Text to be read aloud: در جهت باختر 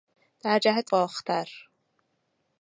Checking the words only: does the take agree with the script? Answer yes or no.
yes